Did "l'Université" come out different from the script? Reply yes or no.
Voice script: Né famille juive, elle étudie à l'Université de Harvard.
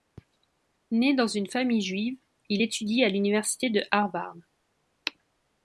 no